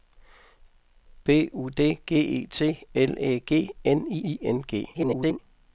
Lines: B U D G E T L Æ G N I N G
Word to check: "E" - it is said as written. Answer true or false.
true